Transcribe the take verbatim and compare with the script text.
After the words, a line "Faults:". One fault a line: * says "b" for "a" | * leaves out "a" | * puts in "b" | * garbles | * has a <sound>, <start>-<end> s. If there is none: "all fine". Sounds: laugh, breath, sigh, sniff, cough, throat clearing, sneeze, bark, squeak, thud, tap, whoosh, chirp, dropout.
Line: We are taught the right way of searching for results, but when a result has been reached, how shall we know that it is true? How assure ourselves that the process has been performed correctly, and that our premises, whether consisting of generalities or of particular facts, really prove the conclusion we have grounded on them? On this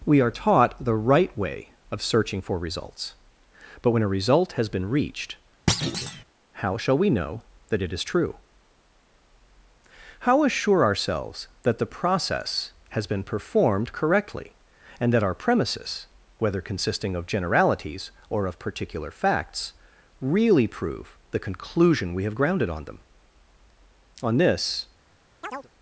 We are taught the right way of searching for results, but when a result has been reached, how shall we know that it is true? How assure ourselves that the process has been performed correctly, and that our premises, whether consisting of generalities or of particular facts, really prove the conclusion we have grounded on them? On this
Faults:
* has a thud, 5.7-6.2 s
* has a chirp, 25.4-25.7 s